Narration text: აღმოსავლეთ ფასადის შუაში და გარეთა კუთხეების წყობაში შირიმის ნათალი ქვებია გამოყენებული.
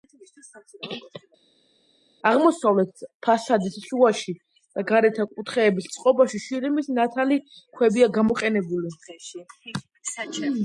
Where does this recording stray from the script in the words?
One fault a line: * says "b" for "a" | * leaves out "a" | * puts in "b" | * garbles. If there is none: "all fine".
all fine